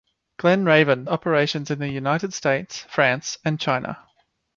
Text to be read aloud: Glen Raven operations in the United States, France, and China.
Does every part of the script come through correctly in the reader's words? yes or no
yes